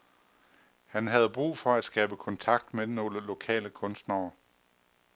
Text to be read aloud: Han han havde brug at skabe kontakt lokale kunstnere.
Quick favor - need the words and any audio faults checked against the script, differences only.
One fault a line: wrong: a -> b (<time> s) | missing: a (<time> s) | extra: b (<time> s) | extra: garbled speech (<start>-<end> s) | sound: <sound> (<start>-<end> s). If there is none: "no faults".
missing: han (1.1 s)
extra: for (1.6 s)
extra: med nogle (2.7 s)